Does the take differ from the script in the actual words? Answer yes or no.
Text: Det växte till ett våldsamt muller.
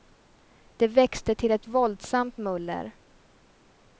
no